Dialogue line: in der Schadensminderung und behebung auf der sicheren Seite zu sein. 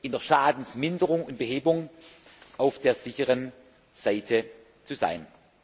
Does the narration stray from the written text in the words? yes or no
no